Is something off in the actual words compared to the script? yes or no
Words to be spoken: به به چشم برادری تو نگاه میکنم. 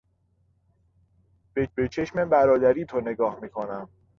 no